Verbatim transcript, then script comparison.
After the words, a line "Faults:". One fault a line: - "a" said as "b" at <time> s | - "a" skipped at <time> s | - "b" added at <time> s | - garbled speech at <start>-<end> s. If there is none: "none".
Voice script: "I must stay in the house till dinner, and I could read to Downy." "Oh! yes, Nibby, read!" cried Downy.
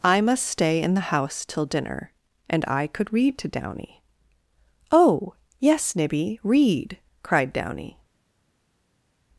"I must stay in the house till dinner, and I could read to Downy." "Oh! yes, Nibby, read!" cried Downy.
Faults:
none